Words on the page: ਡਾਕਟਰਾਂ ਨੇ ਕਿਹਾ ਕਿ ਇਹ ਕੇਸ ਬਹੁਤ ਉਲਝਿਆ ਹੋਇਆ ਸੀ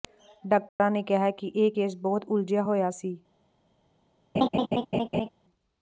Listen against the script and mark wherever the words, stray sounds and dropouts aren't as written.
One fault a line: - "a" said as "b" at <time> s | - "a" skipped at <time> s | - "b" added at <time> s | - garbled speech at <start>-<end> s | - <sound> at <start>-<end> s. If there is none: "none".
- dropout at 0.7-0.8 s
- laugh at 4.3-5.3 s